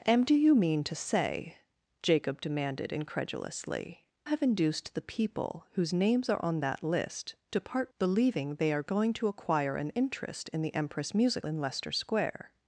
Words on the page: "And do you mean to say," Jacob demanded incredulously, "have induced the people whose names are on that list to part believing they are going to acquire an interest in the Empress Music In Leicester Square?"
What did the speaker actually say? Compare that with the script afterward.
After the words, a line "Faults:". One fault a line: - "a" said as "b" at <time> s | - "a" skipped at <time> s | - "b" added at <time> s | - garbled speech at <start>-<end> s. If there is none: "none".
"And do you mean to say," Jacob demanded incredulously, "have induced the people whose names are on that list to part believing they are going to acquire an interest in the Empress Music In Leicester Square?"
Faults:
none